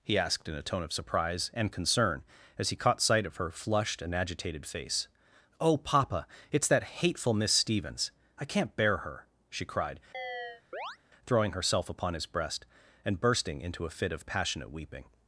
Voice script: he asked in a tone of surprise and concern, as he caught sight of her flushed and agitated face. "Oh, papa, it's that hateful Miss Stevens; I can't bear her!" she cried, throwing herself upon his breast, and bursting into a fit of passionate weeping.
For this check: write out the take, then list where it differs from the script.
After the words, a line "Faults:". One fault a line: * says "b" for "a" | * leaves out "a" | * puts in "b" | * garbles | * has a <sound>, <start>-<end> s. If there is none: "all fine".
he asked in a tone of surprise and concern, as he caught sight of her flushed and agitated face. "Oh, papa, it's that hateful Miss Stevens; I can't bear her!" she cried, throwing herself upon his breast, and bursting into a fit of passionate weeping.
Faults:
* has a chirp, 10.1-11.0 s